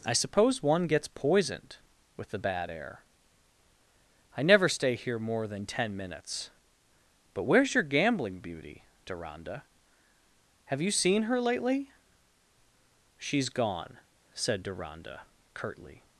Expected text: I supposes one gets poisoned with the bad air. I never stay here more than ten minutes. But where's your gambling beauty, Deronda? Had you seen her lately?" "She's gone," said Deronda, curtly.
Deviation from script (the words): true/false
true